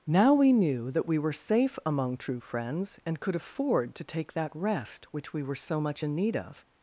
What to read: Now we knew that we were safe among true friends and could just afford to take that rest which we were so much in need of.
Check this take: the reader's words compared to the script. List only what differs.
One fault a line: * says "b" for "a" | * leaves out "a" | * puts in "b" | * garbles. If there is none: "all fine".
* leaves out "just"